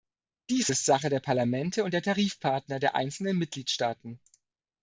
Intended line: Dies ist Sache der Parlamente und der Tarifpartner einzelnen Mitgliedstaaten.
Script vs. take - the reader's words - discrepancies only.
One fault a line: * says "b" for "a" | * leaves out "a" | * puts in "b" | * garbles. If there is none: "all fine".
* puts in "der"